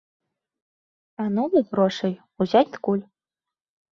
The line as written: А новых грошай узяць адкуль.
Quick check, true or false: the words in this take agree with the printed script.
true